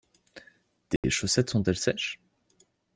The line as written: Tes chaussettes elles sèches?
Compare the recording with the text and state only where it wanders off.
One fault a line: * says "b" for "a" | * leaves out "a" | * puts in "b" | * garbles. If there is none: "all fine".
* puts in "sont"